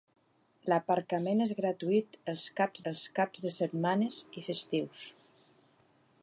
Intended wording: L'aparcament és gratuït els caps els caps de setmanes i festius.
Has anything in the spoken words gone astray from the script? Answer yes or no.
no